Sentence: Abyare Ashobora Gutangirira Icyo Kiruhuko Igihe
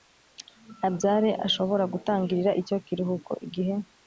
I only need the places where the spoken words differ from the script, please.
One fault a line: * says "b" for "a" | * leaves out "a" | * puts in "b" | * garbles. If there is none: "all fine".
all fine